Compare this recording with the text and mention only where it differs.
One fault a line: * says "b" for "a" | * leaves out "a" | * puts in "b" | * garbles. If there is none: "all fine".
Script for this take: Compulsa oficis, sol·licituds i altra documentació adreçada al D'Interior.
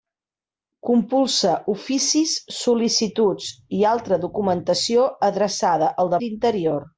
all fine